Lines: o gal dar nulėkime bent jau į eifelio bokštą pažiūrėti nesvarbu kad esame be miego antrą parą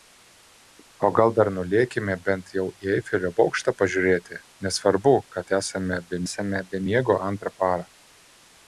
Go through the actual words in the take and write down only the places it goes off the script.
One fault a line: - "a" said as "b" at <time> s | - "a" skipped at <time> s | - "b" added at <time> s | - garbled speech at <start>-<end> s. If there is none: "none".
- "esame be" added at 6.3 s